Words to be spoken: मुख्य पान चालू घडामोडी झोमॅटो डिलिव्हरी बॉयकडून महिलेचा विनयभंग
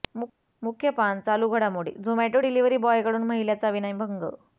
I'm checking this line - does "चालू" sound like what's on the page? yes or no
yes